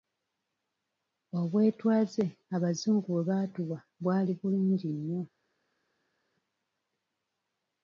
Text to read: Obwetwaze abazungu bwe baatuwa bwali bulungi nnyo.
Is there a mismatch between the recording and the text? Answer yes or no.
no